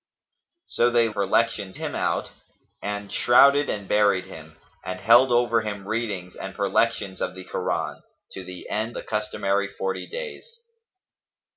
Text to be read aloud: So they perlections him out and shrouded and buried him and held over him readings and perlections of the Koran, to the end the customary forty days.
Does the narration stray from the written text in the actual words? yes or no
no